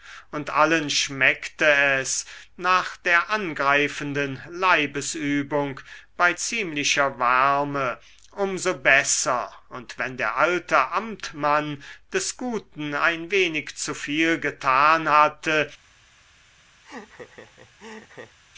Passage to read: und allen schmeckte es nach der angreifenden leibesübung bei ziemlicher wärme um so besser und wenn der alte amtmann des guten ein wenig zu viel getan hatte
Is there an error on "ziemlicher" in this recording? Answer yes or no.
no